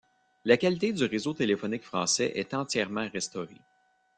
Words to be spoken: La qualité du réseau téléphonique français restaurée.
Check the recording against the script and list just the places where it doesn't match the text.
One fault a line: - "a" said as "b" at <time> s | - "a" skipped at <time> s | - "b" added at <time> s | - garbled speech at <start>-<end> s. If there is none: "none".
- "est entièrement" added at 2.3 s